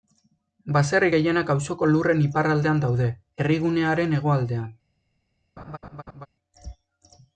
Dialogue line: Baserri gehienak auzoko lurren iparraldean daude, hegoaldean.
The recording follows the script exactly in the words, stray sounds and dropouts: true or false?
false